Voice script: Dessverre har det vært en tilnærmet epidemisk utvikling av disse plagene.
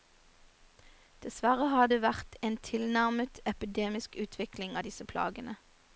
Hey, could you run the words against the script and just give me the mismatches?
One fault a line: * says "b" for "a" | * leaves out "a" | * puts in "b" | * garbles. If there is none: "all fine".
all fine